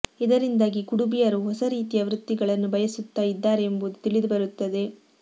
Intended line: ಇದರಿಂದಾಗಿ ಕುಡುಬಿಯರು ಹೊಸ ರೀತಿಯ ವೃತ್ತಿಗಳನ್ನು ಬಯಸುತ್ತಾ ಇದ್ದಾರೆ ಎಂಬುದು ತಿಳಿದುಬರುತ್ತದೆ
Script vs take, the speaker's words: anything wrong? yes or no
no